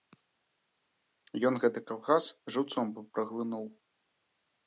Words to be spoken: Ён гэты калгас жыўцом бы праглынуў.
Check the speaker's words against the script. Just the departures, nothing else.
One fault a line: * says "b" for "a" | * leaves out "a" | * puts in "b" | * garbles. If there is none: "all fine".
all fine